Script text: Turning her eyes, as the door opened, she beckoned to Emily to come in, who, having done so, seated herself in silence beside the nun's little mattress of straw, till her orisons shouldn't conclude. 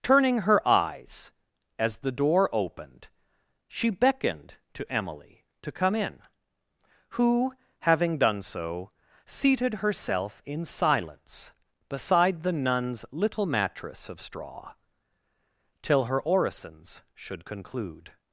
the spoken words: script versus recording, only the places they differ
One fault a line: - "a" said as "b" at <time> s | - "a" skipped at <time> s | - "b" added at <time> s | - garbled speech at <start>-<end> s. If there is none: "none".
- "shouldn't" said as "should" at 17.1 s